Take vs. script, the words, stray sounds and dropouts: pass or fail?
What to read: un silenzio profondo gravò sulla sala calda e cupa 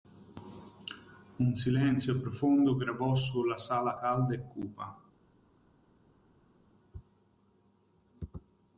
pass